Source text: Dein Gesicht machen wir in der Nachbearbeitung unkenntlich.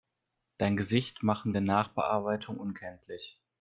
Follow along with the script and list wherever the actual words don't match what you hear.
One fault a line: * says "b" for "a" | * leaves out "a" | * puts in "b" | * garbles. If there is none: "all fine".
* leaves out "wir in"